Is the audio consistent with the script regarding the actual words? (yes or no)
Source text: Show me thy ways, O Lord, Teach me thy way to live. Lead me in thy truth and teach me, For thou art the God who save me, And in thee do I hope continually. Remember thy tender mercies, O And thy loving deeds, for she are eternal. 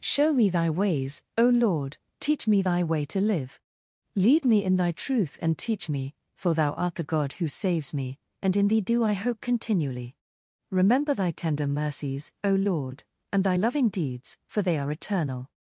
no